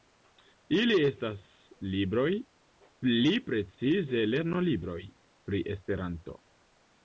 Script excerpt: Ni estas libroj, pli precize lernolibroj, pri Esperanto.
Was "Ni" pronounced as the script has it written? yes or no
no